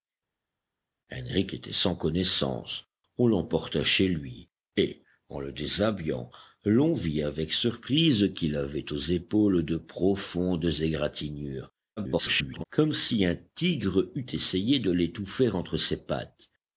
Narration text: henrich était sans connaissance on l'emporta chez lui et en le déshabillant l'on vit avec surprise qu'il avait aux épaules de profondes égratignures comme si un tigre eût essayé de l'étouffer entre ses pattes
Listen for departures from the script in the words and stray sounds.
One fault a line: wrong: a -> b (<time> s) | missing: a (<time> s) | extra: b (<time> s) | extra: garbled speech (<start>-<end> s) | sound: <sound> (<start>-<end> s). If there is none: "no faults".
extra: garbled speech (12.0-12.6 s)